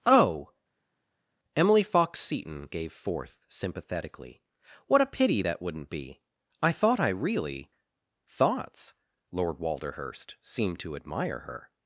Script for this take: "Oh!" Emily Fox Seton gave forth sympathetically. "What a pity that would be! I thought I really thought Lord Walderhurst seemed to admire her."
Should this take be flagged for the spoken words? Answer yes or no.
yes